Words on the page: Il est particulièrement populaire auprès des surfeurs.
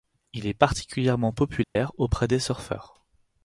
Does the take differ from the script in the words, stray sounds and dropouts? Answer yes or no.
yes